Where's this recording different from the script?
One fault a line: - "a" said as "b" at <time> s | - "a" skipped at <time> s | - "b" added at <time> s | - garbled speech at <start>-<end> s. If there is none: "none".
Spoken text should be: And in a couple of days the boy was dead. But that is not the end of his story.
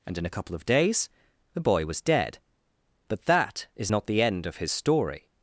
none